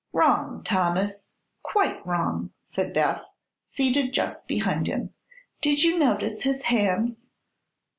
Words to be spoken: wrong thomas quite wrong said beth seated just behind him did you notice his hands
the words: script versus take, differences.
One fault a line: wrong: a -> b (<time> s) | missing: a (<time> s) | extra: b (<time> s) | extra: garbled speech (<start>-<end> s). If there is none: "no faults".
no faults